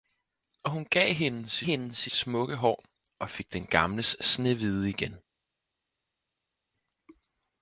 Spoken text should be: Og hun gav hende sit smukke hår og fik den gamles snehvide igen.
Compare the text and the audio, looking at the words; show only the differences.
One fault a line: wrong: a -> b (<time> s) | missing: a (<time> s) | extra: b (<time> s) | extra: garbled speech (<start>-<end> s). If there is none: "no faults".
extra: hende sit (1.6 s)